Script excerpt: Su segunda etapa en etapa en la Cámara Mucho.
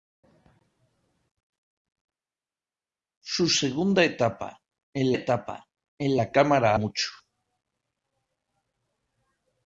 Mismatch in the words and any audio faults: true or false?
false